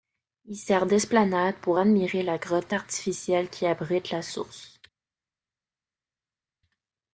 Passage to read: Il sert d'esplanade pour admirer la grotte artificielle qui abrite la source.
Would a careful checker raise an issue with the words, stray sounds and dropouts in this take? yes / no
no